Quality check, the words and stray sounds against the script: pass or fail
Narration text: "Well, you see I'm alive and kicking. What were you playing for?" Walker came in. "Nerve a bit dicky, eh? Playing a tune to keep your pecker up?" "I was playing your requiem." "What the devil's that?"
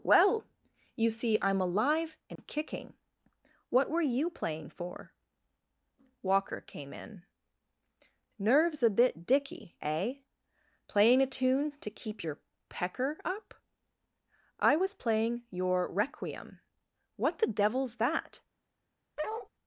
fail